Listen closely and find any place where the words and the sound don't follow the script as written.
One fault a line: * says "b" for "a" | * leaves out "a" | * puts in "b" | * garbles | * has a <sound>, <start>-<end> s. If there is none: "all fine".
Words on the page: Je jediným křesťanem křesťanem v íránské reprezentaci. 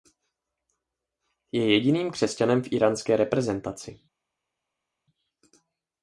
* leaves out "křesťanem"